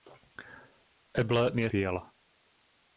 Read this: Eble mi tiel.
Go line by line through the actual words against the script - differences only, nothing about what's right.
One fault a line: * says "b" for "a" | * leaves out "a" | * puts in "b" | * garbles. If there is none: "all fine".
all fine